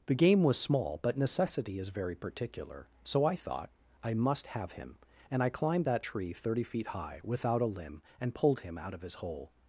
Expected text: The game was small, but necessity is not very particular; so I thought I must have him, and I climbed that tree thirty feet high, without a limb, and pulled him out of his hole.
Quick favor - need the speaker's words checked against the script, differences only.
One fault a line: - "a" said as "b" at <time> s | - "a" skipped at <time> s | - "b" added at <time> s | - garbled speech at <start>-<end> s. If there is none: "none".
- "not" skipped at 1.9 s